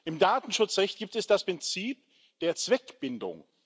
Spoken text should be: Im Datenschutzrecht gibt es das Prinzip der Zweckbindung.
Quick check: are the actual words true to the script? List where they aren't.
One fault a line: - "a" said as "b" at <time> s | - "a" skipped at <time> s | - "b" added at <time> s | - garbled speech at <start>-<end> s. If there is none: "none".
none